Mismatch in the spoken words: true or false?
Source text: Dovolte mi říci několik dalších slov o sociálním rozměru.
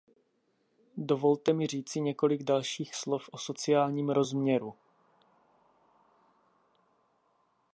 false